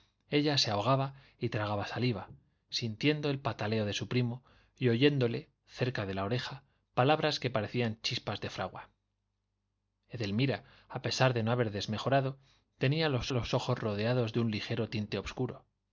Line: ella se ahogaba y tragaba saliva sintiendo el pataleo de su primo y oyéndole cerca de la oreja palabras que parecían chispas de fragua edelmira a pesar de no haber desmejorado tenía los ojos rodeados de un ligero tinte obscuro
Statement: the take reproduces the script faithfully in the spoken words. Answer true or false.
false